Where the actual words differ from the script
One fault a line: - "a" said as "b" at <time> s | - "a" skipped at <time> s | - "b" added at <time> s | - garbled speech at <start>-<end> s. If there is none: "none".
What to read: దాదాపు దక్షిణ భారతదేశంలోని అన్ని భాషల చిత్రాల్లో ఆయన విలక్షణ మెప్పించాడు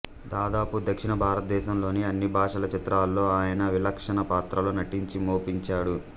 - "పాత్రల్లో నటించి" added at 4.3 s